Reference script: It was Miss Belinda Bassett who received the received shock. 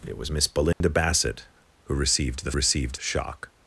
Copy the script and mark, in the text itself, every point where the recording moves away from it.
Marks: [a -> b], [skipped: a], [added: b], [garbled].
It was Miss Belinda Bassett who received the received shock.